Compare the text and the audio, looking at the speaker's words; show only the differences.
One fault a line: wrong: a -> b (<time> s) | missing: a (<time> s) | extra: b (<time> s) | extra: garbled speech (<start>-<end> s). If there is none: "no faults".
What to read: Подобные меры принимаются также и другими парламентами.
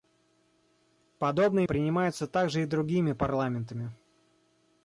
missing: меры (1.7 s)